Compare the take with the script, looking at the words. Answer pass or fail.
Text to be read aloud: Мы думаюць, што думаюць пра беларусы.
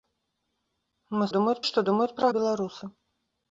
pass